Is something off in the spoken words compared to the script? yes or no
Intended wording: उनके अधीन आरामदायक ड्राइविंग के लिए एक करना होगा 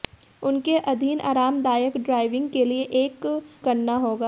no